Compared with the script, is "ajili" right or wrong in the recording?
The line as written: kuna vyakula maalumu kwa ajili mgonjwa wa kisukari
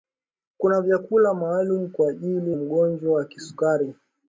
right